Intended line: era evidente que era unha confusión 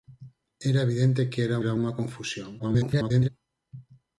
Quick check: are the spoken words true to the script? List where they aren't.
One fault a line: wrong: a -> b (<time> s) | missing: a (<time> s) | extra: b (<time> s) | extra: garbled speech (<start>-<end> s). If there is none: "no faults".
extra: era (1.6 s)
extra: garbled speech (2.6-3.3 s)